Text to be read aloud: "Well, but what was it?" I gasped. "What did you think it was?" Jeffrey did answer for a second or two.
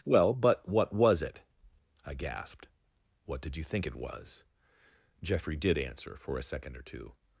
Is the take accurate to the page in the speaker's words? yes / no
yes